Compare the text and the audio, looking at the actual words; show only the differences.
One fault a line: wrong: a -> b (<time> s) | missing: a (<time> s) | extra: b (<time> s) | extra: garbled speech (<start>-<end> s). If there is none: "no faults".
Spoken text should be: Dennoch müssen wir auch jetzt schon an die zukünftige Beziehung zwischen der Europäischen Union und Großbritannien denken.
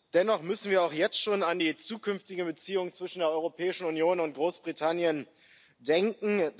no faults